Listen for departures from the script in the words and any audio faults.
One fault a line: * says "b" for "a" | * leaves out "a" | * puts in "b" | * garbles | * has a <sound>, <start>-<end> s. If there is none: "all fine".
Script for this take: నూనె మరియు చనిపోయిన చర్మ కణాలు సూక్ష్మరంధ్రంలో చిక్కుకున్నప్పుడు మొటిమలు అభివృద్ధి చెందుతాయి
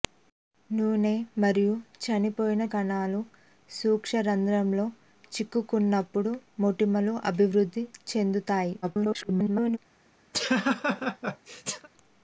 * leaves out "చర్మ"
* garbles
* has a laugh, 10.3-11.9 s